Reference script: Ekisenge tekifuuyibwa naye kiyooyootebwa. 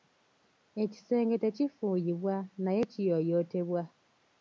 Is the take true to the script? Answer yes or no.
yes